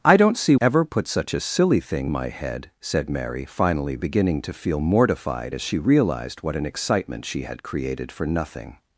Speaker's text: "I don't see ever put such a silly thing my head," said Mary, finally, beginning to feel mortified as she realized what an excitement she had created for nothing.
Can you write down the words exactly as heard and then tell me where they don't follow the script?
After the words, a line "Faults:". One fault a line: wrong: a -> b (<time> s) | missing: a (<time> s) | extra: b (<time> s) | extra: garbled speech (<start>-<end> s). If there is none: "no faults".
"I don't see ever put such a silly thing my head," said Mary, finally, beginning to feel mortified as she realized what an excitement she had created for nothing.
Faults:
no faults